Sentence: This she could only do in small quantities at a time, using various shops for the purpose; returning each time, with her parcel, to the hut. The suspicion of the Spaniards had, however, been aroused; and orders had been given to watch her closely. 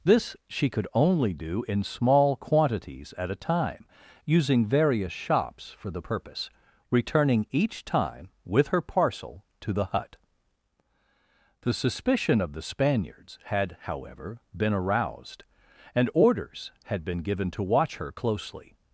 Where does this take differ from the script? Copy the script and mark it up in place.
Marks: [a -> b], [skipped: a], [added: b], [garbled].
This she could only do in small quantities at a time, using various shops for the purpose; returning each time, with her parcel, to the hut. The suspicion of the Spaniards had, however, been aroused; and orders had been given to watch her closely.